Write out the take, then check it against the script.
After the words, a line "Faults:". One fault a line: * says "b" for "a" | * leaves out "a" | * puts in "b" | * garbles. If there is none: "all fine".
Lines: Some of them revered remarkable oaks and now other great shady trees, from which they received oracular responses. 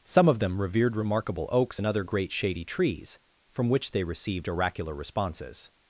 Some of them revered remarkable oaks and other great shady trees, from which they received oracular responses.
Faults:
* leaves out "now"